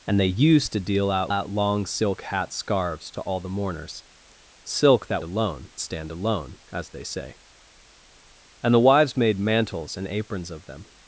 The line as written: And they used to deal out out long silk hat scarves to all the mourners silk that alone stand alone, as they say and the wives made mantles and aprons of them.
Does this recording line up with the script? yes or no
yes